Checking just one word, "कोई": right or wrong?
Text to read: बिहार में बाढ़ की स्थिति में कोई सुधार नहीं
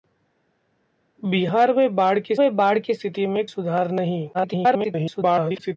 wrong